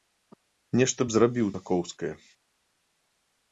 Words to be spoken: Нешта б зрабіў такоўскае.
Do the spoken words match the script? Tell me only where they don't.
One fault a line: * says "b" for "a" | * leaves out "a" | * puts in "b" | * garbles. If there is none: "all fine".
all fine